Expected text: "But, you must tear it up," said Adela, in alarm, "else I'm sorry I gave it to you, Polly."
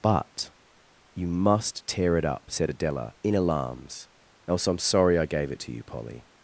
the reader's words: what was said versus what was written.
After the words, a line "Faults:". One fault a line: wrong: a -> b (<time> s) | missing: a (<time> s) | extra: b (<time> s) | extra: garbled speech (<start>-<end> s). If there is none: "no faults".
"But, you must tear it up," said Adela, in alarms, "else I'm sorry I gave it to you, Polly."
Faults:
wrong: alarm -> alarms (3.3 s)